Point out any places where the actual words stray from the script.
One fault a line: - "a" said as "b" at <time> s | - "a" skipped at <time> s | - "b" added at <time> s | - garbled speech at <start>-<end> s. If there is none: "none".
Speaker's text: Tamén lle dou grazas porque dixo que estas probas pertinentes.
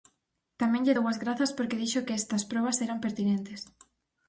- "as" added at 1.1 s
- "eran" added at 2.8 s